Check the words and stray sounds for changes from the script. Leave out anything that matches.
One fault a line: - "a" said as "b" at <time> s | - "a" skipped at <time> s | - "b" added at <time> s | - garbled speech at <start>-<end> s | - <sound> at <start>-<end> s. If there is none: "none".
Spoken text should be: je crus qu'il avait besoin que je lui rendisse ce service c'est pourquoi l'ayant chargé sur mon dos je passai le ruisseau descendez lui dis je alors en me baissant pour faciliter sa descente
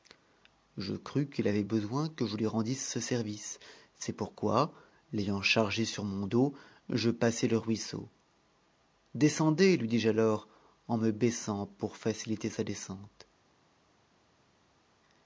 none